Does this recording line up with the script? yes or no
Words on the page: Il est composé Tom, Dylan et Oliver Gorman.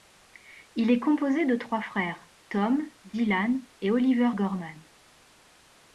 no